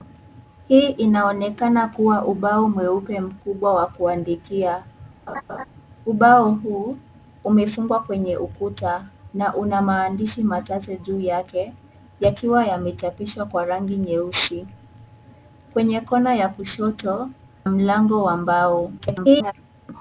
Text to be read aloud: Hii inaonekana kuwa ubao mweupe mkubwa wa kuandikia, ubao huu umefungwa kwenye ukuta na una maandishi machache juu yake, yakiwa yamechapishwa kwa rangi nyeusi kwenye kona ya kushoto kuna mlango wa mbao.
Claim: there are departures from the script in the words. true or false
true